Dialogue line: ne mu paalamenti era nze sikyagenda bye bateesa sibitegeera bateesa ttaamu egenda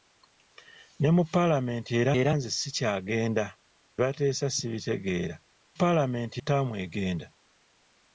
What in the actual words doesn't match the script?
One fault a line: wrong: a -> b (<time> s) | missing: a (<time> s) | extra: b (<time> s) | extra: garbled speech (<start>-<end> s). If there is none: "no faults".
extra: era (2.2 s)
missing: bye (3.4 s)
wrong: bateesa -> paalamenti (5.8 s)